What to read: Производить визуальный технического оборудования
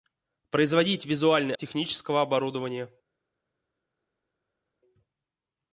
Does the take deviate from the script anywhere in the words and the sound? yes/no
no